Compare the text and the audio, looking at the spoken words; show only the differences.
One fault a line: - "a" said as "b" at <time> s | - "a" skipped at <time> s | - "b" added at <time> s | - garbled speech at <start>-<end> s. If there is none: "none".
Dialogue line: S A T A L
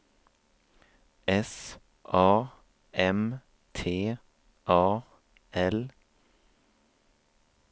- "M" added at 2.9 s